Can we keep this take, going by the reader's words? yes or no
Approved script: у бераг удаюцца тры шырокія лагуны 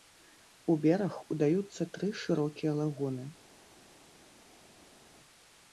yes